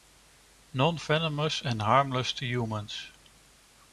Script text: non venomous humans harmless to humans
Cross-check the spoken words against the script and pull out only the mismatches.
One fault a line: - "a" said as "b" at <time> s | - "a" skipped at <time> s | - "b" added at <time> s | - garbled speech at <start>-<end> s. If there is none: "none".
- "humans" said as "and" at 1.6 s